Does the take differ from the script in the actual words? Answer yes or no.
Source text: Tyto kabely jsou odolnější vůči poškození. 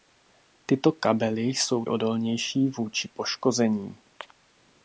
no